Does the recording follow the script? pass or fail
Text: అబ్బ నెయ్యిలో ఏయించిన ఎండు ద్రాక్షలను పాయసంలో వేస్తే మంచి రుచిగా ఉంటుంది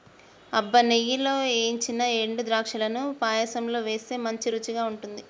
pass